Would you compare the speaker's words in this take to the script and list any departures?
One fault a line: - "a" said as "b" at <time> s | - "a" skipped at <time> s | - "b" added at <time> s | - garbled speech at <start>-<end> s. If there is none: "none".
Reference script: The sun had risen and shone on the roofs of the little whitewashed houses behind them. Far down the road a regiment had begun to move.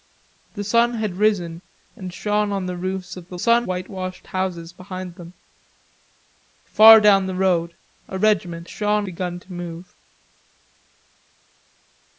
- "little" said as "sun" at 3.4 s
- "had" said as "shone" at 8.7 s